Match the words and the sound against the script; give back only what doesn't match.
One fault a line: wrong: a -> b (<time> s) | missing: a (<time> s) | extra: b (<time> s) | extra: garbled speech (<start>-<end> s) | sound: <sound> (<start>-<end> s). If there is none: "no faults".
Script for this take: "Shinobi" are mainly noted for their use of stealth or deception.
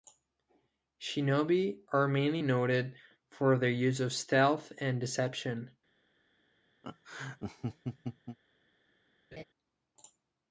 wrong: or -> and (4.8 s)
sound: laugh (6.8-8.4 s)
sound: laugh (9.3-9.4 s)